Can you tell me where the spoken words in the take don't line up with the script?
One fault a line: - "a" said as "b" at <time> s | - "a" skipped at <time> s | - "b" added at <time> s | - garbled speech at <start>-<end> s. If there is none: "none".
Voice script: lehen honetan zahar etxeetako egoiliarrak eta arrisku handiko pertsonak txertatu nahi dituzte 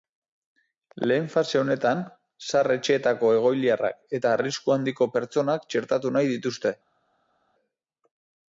- "fase" added at 1.3 s